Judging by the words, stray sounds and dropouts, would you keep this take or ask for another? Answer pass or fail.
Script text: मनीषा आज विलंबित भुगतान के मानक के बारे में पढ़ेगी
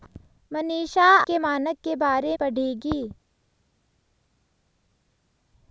fail